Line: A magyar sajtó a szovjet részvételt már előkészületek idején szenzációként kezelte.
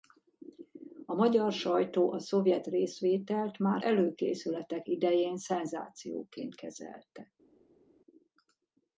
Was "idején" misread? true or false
false